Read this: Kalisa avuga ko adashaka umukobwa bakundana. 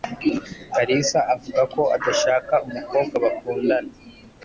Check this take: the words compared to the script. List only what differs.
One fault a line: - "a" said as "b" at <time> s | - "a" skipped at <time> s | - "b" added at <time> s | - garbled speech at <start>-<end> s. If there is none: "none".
none